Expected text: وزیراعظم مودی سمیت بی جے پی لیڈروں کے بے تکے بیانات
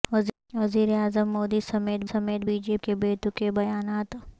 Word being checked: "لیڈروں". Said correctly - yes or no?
no